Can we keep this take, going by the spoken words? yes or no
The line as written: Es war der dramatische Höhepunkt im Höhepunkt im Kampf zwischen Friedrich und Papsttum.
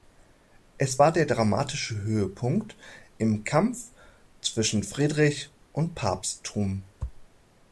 no